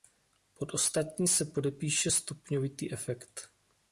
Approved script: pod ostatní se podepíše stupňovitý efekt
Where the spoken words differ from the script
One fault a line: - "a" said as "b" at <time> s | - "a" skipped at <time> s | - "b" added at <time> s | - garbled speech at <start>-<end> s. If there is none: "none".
none